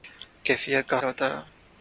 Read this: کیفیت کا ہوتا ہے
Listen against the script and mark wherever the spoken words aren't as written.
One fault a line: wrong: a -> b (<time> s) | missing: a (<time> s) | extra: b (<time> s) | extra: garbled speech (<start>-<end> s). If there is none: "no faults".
no faults